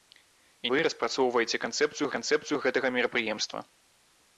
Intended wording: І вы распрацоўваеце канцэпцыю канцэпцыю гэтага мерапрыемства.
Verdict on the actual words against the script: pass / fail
pass